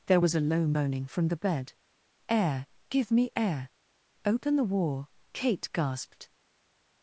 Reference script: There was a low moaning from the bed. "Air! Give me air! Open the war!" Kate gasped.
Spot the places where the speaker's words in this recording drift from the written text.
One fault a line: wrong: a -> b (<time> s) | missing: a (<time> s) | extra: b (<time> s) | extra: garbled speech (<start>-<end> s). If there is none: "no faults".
no faults